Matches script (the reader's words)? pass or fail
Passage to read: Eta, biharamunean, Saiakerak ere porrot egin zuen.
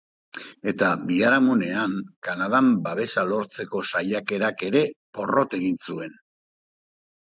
fail